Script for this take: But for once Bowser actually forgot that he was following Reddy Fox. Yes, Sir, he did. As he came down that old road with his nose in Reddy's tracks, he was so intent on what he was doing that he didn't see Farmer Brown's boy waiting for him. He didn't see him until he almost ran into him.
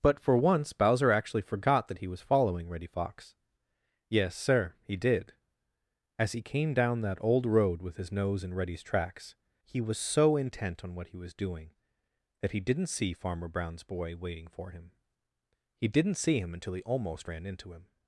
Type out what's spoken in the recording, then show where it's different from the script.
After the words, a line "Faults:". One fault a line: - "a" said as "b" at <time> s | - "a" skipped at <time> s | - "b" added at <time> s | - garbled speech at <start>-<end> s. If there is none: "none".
But for once Bowser actually forgot that he was following Reddy Fox. Yes, Sir, he did. As he came down that old road with his nose in Reddy's tracks, he was so intent on what he was doing that he didn't see Farmer Brown's boy waiting for him. He didn't see him until he almost ran into him.
Faults:
none